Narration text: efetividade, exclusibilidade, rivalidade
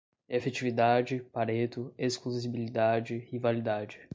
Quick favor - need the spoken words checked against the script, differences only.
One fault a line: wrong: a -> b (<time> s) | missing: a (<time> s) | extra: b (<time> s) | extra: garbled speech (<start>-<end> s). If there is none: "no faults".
extra: pareto (1.3 s)